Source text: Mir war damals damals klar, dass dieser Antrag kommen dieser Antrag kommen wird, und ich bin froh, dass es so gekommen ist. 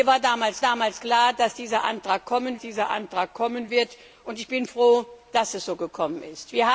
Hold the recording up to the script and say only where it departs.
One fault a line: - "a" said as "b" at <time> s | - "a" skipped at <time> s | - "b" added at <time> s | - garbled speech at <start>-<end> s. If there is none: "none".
none